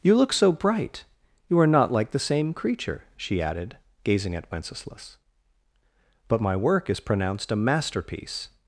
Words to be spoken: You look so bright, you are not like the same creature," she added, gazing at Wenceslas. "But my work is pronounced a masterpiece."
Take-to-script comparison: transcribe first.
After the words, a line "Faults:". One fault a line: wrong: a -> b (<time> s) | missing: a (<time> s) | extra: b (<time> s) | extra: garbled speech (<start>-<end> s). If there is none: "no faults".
You look so bright, you are not like the same creature," she added, gazing at Wenceslas. "But my work is pronounced a masterpiece."
Faults:
no faults